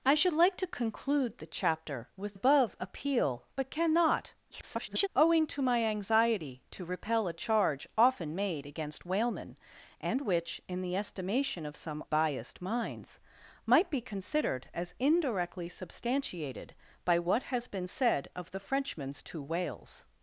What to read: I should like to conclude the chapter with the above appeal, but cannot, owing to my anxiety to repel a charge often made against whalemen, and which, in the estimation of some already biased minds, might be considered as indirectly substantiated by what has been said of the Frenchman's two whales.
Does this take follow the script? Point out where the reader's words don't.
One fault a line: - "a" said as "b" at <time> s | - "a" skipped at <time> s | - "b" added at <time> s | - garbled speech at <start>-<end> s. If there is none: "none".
- "the" skipped at 2.4 s
- garbled speech at 4.5-5.1 s
- "already" skipped at 12.0 s